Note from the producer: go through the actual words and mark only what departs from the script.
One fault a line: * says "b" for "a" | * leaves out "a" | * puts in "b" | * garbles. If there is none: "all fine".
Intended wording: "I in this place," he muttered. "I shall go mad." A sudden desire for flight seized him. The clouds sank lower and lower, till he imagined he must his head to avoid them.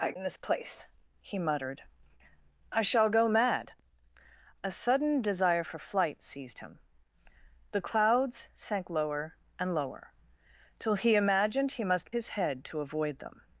all fine